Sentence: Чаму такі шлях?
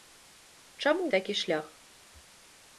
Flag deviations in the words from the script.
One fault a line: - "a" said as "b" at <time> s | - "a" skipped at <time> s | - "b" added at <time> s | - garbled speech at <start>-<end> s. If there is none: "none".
none